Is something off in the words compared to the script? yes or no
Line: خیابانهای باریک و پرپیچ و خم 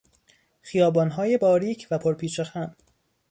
no